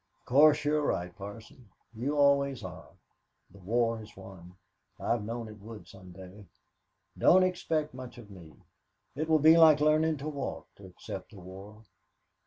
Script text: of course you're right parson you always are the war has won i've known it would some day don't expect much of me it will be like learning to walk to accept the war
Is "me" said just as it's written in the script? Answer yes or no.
yes